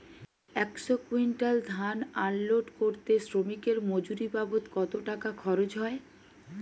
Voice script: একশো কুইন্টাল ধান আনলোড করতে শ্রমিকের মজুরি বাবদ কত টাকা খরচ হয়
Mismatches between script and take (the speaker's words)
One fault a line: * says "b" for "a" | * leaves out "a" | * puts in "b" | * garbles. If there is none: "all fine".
all fine